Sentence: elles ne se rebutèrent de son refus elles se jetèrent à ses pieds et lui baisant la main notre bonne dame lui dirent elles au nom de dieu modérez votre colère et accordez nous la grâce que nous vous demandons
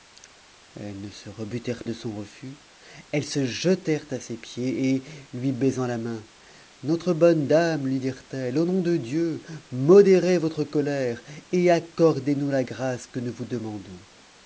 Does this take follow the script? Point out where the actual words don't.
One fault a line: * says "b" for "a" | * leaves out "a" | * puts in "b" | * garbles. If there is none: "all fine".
all fine